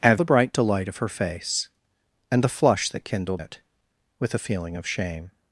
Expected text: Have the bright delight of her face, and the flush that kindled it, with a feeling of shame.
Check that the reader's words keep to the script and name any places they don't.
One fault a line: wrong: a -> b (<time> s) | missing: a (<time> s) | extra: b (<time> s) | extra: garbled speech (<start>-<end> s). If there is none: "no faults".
no faults